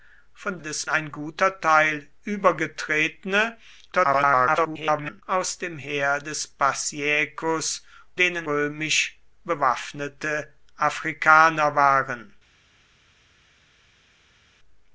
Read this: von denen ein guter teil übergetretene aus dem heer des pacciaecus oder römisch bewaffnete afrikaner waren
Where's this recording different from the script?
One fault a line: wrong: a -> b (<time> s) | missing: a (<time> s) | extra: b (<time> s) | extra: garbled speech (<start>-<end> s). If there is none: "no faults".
wrong: denen -> des (0.6 s)
extra: garbled speech (3.9-5.2 s)
wrong: oder -> denen (8.2 s)